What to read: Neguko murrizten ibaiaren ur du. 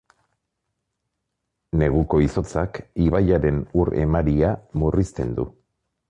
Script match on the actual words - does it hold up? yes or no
no